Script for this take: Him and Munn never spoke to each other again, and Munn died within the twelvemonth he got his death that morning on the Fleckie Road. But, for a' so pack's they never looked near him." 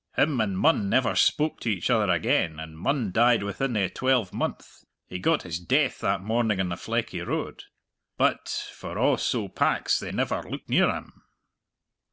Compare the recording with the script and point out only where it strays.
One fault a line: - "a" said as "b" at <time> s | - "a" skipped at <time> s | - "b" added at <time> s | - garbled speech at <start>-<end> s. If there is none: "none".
none